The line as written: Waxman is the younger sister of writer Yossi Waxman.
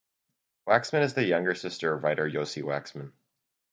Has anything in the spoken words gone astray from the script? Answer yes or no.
no